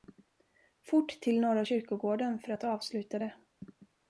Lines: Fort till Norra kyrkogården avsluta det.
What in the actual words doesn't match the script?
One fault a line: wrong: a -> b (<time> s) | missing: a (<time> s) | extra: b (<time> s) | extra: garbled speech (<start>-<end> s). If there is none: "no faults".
extra: för att (2.4 s)